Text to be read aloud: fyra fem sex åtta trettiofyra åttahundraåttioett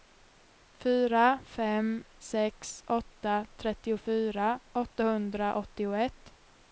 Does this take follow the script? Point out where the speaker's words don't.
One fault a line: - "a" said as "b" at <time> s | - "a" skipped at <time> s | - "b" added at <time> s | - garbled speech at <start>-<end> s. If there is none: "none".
none